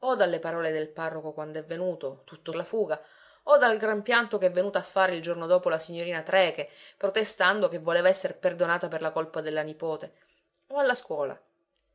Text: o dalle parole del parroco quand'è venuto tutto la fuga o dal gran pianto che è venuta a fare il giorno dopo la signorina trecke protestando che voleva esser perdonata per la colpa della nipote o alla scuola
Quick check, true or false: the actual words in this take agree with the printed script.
true